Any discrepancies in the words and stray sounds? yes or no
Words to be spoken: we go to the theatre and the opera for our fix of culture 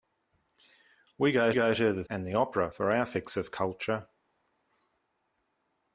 yes